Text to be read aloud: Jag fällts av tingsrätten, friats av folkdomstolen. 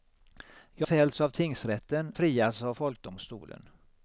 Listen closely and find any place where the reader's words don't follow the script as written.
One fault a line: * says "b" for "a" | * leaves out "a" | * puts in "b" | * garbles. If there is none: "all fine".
all fine